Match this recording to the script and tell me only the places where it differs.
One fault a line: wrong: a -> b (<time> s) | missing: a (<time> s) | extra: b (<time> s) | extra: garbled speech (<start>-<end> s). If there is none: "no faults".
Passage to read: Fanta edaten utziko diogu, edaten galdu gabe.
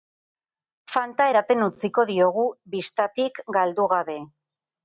wrong: edaten -> bistatik (2.8 s)